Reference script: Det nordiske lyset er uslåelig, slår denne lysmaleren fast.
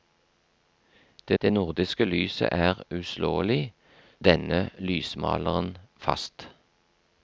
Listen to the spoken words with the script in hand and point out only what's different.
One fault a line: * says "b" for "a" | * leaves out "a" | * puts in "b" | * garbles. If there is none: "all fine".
* puts in "det"
* leaves out "slår"